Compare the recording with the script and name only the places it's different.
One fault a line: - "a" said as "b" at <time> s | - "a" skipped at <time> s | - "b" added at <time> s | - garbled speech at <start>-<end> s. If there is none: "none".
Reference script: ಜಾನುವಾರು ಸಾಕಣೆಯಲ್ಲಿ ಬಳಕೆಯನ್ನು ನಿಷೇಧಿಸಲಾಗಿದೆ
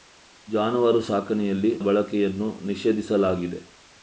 none